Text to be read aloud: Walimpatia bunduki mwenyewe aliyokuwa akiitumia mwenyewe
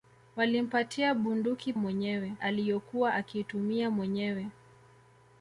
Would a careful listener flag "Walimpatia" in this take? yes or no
no